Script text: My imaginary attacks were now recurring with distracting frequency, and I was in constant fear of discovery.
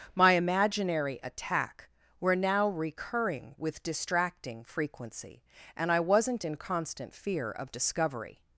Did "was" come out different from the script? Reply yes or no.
yes